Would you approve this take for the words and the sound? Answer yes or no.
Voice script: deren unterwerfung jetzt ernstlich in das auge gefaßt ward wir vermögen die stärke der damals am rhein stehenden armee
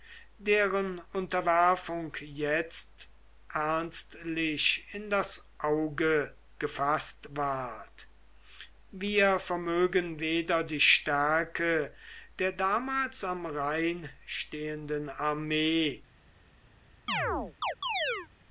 no